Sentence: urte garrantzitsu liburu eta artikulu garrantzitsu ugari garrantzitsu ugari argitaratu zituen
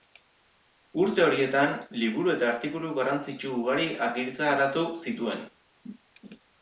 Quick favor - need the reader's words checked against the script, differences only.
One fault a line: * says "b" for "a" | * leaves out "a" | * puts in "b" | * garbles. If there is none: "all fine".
* says "horietan" for "garrantzitsu"
* leaves out "garrantzitsu ugari"